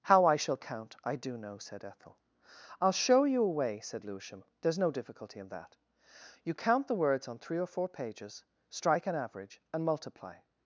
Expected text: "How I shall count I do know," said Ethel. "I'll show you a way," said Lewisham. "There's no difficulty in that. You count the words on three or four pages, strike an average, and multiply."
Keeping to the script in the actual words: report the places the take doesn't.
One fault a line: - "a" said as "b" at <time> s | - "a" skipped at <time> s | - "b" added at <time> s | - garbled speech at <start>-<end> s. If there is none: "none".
none